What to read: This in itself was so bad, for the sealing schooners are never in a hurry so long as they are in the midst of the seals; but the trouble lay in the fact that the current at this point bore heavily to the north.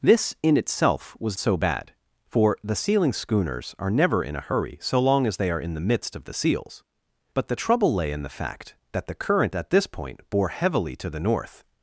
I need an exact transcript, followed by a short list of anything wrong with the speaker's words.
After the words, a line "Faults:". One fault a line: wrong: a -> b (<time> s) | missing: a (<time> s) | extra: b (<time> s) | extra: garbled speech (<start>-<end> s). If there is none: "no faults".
This in itself was so bad, for the sealing schooners are never in a hurry so long as they are in the midst of the seals; but the trouble lay in the fact that the current at this point bore heavily to the north.
Faults:
no faults